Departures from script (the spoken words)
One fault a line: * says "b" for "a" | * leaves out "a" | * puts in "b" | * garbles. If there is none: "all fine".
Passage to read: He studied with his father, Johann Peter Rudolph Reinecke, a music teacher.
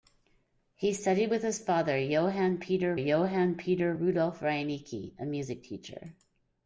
* puts in "Johann Peter"